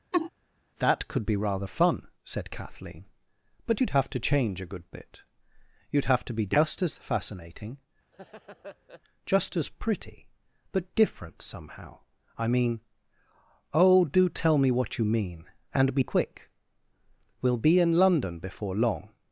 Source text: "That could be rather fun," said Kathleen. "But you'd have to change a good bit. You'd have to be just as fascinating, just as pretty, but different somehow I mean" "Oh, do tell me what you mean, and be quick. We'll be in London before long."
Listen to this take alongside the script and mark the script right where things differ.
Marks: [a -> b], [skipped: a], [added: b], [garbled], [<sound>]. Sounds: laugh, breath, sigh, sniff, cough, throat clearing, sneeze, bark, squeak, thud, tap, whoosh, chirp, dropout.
[laugh] "That could be rather fun," said Kathleen. "But you'd have to change a good bit. You'd have to be just as fascinating, [laugh] just as pretty, but different somehow I mean" "Oh, do tell me what you mean, and be quick. We'll be in London before long."